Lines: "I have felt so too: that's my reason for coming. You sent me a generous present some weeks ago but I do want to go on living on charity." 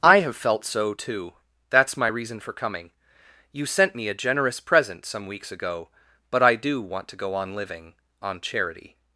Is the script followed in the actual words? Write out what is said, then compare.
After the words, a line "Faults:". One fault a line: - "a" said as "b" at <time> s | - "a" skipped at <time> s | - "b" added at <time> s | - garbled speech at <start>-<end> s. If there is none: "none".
"I have felt so too: that's my reason for coming. You sent me a generous present some weeks ago but I do want to go on living on charity."
Faults:
none